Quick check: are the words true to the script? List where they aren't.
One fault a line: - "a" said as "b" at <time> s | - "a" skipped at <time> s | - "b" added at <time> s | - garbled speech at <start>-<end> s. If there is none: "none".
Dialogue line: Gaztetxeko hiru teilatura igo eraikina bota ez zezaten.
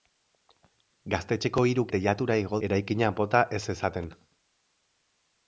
none